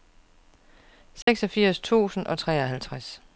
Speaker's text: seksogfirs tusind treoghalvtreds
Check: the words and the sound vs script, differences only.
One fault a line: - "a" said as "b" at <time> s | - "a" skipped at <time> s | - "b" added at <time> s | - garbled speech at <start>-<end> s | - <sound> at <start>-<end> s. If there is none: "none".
- dropout at 1.2-1.3 s
- "og" added at 2.3 s